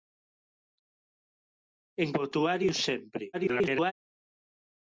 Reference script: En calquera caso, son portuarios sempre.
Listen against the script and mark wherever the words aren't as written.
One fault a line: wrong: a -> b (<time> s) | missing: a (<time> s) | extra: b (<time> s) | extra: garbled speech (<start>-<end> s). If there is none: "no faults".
missing: calquera caso son (2.1 s)
extra: garbled speech (3.3-3.9 s)